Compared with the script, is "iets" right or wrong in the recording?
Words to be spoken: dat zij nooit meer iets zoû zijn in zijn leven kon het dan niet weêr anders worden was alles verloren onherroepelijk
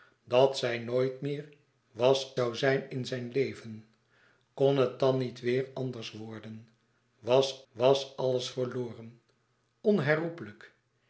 wrong